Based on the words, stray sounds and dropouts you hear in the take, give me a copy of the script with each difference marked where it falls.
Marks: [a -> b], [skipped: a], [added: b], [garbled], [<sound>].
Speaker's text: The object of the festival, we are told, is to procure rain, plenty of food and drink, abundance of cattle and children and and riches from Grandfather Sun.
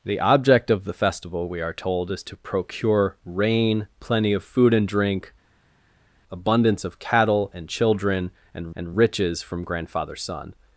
The object of the festival, we are told, is to procure rain, plenty of food and drink, abundance of cattle and children and and riches from Grandfather Sun.